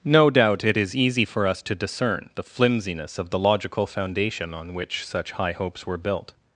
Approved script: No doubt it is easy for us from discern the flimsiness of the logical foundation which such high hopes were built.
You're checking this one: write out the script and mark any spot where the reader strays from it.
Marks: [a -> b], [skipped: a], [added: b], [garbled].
No doubt it is easy for us [from -> to] discern the flimsiness of the logical foundation [added: on] which such high hopes were built.